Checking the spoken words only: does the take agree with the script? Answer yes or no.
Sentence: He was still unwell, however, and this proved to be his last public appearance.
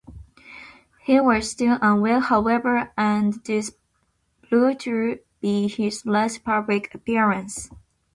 yes